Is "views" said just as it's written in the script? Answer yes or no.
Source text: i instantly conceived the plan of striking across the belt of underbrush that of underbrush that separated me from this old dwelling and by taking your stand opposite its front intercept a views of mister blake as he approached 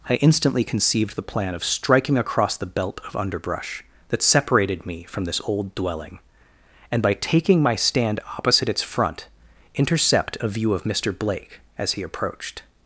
no